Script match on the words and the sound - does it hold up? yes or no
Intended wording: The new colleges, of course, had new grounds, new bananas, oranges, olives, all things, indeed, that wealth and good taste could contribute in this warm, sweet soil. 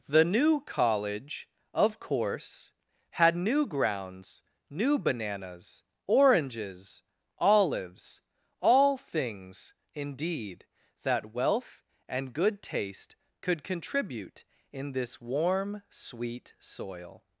no